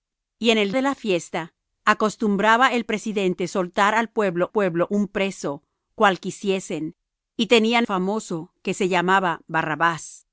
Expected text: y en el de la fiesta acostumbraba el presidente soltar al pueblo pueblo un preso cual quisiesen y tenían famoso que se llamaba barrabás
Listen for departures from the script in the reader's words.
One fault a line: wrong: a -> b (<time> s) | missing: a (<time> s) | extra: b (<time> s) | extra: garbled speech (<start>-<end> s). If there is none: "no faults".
no faults